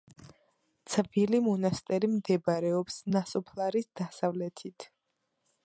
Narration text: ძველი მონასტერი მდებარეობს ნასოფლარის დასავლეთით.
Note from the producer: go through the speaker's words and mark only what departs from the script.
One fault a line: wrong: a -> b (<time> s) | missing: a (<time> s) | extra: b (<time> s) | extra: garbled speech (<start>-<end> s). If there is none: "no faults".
no faults